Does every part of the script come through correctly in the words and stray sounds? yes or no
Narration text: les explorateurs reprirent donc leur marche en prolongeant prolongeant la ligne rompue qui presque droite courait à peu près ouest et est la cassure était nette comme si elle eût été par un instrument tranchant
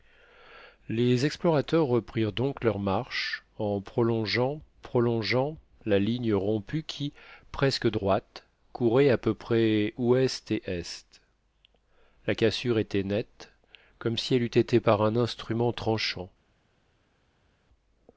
yes